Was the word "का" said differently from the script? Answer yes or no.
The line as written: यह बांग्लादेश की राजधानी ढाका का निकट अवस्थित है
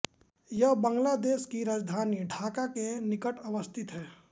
yes